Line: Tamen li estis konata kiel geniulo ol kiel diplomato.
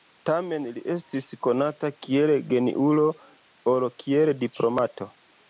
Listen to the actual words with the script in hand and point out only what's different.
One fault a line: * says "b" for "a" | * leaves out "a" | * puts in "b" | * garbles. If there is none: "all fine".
all fine